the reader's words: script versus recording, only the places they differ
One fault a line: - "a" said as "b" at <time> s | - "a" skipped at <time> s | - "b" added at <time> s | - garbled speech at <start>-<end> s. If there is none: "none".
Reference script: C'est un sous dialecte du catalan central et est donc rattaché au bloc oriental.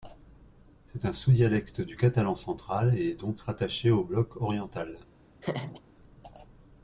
none